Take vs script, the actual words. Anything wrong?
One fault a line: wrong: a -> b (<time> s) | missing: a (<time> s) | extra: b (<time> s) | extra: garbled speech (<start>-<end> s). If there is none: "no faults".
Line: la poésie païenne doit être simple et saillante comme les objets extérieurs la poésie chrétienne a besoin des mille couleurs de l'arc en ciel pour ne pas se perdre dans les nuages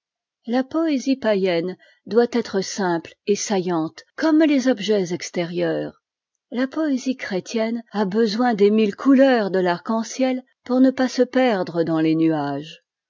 no faults